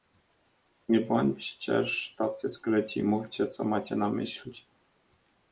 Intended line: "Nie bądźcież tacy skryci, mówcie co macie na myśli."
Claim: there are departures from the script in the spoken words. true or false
false